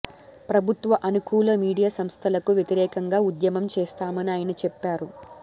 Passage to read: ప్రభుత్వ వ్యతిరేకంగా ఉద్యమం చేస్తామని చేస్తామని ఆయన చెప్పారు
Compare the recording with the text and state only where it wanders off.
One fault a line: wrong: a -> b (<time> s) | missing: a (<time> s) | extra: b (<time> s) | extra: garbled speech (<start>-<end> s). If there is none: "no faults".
extra: అనుకూల మీడియా సంస్థలకు (1.0 s)
missing: చేస్తామని (4.3 s)